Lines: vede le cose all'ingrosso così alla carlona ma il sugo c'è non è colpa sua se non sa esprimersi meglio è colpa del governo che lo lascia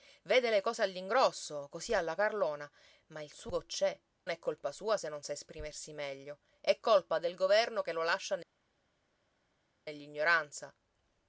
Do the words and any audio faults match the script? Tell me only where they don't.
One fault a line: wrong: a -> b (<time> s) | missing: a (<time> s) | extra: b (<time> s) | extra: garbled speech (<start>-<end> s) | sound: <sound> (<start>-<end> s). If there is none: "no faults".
missing: non (4.0 s)